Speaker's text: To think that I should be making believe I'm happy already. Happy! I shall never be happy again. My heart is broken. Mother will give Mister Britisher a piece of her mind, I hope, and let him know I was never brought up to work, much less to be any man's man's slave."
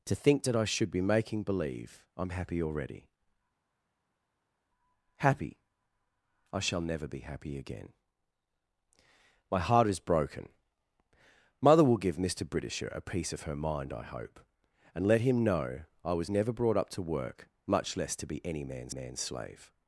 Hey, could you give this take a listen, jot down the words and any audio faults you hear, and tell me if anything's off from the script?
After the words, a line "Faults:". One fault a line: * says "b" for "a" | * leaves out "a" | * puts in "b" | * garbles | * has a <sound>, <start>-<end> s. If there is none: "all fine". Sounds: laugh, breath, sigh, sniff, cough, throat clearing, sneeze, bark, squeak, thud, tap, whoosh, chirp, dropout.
To think that I should be making believe I'm happy already. Happy! I shall never be happy again. My heart is broken. Mother will give Mister Britisher a piece of her mind, I hope, and let him know I was never brought up to work, much less to be any man's man's slave."
Faults:
all fine